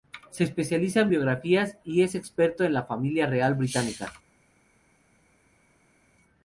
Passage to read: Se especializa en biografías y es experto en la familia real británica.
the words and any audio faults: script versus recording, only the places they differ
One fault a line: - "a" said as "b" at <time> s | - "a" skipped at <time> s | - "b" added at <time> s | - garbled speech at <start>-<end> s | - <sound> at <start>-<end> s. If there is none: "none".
none